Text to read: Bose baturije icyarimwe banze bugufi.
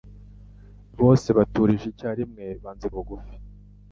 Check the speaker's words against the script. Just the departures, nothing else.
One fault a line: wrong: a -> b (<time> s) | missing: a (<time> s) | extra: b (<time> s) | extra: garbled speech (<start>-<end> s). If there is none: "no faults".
no faults